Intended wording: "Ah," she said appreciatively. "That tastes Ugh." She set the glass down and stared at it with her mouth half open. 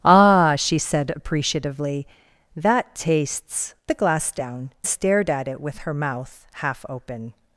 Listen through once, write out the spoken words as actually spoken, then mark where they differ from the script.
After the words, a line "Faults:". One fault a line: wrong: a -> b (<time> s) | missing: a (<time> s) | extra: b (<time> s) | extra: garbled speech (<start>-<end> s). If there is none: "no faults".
"Ah," she said appreciatively. "That tastes The glass down stared at it with her mouth half open.
Faults:
missing: Ugh She set (3.8 s)
missing: and (4.7 s)